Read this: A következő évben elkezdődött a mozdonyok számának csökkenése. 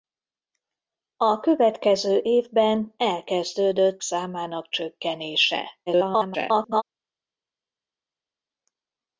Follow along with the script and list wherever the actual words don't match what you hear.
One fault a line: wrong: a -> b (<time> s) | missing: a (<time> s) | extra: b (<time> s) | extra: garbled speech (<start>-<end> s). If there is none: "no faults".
missing: a mozdonyok (4.0 s)
extra: garbled speech (5.9-6.8 s)